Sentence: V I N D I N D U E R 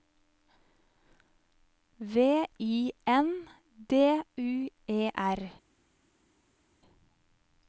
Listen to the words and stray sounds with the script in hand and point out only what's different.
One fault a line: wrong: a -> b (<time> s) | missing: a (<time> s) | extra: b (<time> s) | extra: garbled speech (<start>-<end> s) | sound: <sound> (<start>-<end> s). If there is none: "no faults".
missing: I N D (4.2 s)